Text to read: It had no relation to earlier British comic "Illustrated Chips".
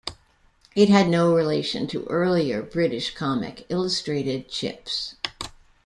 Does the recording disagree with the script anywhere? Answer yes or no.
no